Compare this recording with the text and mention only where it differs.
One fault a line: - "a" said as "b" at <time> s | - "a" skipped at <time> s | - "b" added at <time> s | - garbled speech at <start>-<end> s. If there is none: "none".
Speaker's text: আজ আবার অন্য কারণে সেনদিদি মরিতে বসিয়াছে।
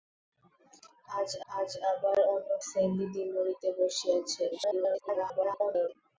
- "আজ" added at 1.5 s
- "কারণে" skipped at 2.5 s
- garbled speech at 4.5-5.9 s